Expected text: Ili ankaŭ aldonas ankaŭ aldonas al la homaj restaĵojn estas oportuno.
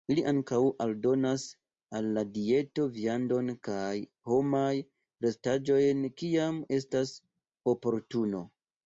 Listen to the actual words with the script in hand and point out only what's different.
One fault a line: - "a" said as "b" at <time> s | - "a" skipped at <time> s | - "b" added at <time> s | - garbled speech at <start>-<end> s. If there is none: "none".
- "ankaŭ aldonas al la" said as "al la dieto viandon kaj" at 2.0 s
- "kiam" added at 6.2 s